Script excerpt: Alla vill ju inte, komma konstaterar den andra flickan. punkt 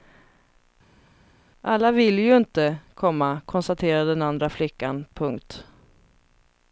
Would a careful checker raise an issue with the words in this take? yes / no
no